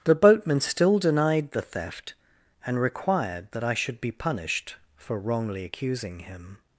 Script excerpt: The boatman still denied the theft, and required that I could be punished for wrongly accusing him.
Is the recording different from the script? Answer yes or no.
yes